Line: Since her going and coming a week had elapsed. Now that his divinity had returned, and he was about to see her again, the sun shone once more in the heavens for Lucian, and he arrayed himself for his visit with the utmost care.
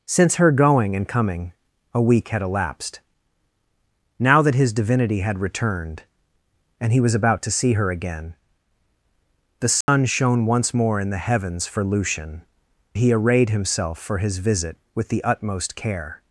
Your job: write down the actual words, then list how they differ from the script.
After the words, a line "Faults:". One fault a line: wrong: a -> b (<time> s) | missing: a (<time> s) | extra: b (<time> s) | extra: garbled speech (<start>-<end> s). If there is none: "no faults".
Since her going and coming a week had elapsed. Now that his divinity had returned, and he was about to see her again, the sun shone once more in the heavens for Lucian, he arrayed himself for his visit with the utmost care.
Faults:
missing: and (12.4 s)